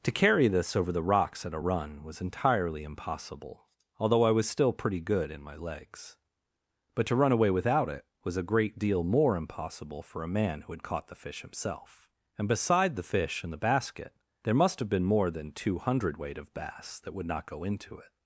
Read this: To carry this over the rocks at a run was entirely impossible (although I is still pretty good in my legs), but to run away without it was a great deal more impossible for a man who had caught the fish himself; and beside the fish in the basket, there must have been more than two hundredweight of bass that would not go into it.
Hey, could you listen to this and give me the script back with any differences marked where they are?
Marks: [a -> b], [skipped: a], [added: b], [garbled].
To carry this over the rocks at a run was entirely impossible (although I [is -> was] still pretty good in my legs), but to run away without it was a great deal more impossible for a man who had caught the fish himself; and beside the fish in the basket, there must have been more than two hundredweight of bass that would not go into it.